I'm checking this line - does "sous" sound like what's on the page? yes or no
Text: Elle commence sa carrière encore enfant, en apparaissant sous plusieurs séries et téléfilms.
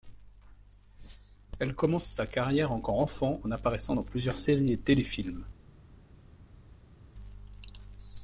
no